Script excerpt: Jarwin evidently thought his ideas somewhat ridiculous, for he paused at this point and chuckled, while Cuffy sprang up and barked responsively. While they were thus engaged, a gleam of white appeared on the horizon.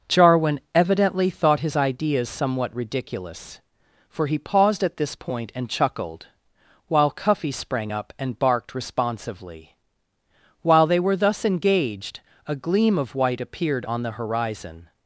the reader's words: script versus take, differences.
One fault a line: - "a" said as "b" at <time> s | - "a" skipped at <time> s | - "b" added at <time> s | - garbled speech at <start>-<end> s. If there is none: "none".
none